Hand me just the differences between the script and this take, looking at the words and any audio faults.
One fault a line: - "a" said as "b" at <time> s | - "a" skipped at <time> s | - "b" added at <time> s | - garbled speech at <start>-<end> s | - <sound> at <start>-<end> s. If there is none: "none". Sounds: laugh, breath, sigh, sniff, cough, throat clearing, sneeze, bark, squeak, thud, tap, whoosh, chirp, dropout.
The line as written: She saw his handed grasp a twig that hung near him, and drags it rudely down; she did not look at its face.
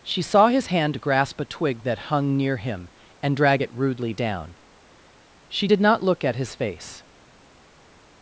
- "handed" said as "hand" at 0.7 s
- "drags" said as "drag" at 3.4 s
- "its" said as "his" at 6.4 s